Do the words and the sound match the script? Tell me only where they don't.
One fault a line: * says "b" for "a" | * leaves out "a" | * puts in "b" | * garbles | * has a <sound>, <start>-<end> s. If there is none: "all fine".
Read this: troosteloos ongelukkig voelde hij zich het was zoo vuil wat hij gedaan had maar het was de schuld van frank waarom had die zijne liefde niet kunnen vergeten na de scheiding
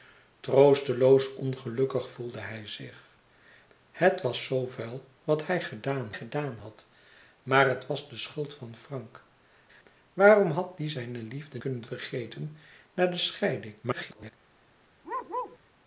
* puts in "gedaan"
* leaves out "niet"
* garbles
* has a bark, 15.0-15.6 s